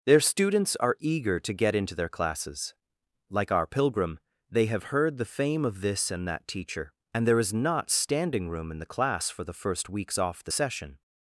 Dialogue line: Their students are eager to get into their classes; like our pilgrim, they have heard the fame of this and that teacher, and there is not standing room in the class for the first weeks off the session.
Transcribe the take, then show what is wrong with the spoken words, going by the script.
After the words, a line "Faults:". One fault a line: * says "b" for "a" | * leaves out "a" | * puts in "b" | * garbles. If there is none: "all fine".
Their students are eager to get into their classes; like our pilgrim, they have heard the fame of this and that teacher, and there is not standing room in the class for the first weeks off the session.
Faults:
all fine